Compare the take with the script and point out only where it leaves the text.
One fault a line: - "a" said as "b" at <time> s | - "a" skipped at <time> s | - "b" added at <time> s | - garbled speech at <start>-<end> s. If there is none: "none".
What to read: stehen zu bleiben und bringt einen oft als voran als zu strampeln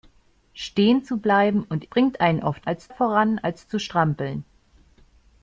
none